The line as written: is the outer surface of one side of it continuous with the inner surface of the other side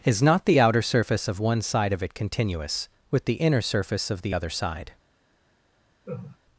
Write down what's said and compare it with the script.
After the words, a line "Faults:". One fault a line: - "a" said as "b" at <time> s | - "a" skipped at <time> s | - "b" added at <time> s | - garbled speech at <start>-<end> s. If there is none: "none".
is not the outer surface of one side of it continuous with the inner surface of the other side
Faults:
- "not" added at 0.2 s